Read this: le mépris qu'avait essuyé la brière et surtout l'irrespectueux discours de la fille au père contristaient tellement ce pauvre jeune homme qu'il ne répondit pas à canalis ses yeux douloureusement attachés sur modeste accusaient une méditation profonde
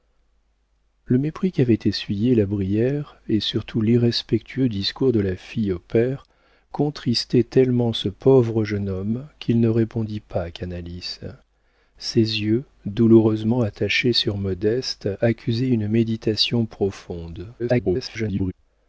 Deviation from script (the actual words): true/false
true